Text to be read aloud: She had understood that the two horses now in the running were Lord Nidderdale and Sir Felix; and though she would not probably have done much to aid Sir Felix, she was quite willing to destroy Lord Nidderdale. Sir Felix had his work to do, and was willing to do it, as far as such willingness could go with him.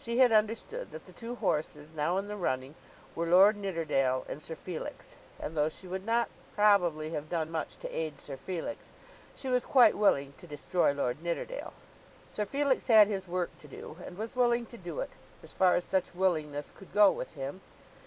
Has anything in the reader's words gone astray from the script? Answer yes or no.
no